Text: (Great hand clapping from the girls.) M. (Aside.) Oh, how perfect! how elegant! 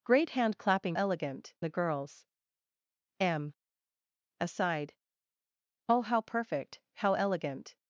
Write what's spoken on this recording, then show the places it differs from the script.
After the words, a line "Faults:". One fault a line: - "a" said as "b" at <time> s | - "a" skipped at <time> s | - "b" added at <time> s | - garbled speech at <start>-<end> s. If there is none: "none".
(Great hand clapping elegant the girls.) M. (Aside.) Oh, how perfect! how elegant!
Faults:
- "from" said as "elegant" at 0.9 s